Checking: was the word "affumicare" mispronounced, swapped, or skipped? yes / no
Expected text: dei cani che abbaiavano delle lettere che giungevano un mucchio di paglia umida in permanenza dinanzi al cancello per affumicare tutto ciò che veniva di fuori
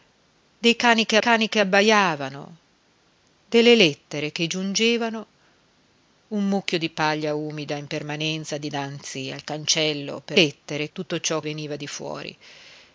yes